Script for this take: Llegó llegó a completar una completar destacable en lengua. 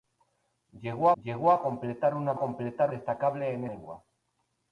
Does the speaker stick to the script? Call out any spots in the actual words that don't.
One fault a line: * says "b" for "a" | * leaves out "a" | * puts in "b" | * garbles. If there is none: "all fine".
all fine